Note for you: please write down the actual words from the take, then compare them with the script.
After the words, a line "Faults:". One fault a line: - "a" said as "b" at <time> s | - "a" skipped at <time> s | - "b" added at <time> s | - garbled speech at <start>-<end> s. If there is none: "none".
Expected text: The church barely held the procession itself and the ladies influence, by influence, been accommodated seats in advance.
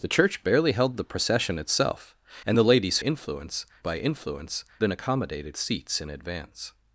The church barely held the procession itself and the ladies influence, by influence, been accommodated seats in advance.
Faults:
none